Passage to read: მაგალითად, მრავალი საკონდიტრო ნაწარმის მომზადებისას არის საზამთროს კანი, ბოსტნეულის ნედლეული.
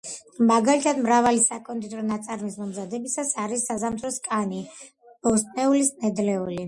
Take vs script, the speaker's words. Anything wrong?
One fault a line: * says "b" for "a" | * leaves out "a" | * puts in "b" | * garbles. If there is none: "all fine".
all fine